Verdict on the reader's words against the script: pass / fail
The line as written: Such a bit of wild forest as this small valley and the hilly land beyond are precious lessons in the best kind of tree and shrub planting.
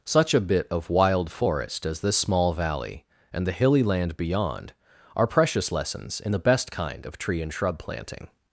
pass